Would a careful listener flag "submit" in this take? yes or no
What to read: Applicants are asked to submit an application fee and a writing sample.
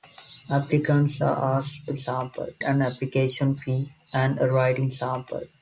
yes